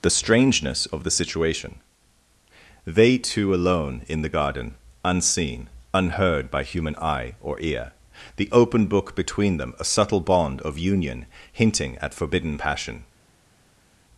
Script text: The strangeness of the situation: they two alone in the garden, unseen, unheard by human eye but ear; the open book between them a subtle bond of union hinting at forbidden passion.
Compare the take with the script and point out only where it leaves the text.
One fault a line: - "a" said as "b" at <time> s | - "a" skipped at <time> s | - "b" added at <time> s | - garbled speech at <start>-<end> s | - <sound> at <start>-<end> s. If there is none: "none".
- "but" said as "or" at 7.4 s